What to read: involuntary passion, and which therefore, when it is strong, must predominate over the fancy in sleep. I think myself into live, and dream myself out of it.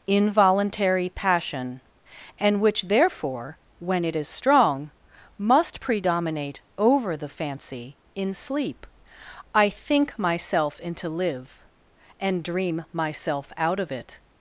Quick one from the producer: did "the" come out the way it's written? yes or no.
yes